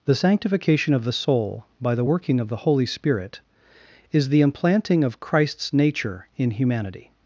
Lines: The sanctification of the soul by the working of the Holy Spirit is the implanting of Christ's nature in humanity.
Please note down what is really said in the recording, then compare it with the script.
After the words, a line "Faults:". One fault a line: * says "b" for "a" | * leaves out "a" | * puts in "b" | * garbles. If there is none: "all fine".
The sanctification of the soul by the working of the Holy Spirit is the implanting of Christ's nature in humanity.
Faults:
all fine